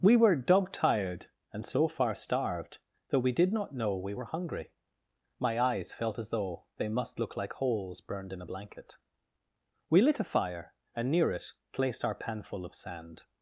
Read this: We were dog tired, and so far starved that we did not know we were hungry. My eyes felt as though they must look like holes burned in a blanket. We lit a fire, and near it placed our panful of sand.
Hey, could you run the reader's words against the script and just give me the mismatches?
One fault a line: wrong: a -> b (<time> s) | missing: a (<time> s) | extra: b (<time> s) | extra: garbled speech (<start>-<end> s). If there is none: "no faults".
no faults